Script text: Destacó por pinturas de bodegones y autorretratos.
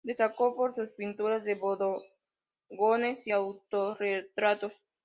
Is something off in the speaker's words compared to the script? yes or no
yes